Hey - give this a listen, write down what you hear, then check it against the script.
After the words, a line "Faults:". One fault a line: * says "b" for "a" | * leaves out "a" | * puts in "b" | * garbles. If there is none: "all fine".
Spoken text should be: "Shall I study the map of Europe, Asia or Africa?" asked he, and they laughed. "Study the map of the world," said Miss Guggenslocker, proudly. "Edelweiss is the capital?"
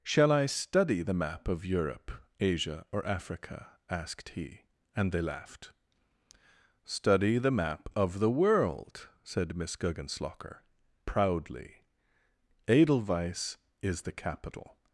"Shall I study the map of Europe, Asia or Africa?" asked he, and they laughed. "Study the map of the world," said Miss Guggenslocker, proudly. "Edelweiss is the capital?"
Faults:
all fine